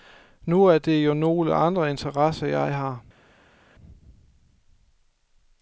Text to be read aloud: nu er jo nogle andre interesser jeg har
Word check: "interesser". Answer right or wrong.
right